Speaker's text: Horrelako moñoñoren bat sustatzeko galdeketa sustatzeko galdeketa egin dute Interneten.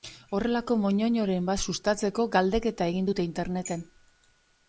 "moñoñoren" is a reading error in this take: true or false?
false